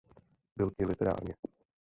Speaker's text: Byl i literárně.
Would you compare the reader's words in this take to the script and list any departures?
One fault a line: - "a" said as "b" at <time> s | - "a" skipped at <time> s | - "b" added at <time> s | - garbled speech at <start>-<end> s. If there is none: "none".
none